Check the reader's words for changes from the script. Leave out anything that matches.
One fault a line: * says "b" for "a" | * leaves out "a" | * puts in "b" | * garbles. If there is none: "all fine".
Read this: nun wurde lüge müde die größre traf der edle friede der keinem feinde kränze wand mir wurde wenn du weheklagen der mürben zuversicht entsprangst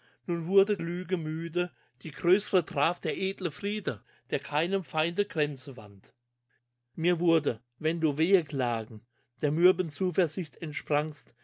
all fine